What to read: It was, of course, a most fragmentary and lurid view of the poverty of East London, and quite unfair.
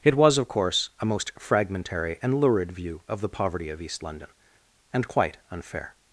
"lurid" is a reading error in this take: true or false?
false